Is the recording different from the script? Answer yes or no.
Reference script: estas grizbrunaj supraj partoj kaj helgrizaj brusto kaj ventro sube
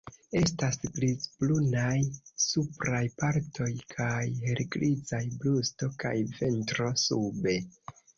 no